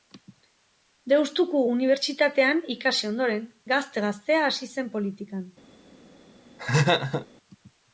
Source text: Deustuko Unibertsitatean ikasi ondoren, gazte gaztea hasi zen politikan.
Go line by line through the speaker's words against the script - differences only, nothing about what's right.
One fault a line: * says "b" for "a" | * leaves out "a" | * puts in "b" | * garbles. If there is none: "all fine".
all fine